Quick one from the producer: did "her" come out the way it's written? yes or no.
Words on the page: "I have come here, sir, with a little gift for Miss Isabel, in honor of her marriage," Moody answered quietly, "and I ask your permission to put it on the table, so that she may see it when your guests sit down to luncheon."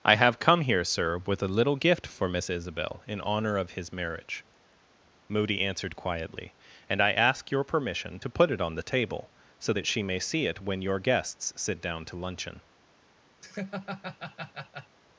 no